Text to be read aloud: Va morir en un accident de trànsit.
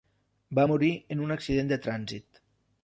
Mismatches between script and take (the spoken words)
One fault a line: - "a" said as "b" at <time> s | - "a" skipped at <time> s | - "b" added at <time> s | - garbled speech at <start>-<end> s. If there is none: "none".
none